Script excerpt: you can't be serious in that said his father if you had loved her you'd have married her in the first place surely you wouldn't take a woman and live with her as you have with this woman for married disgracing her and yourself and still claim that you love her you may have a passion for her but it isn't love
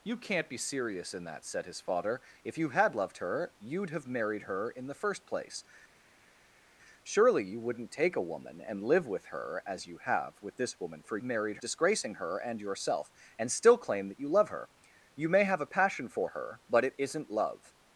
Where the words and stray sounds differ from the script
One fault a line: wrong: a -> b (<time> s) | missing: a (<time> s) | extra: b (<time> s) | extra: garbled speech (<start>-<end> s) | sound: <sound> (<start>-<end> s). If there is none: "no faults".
no faults